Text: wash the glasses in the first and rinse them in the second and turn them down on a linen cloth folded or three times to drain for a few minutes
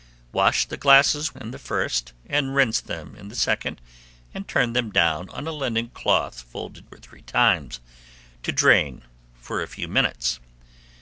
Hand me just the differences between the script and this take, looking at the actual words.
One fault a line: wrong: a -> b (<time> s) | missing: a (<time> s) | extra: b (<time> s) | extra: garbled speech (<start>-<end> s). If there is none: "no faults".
no faults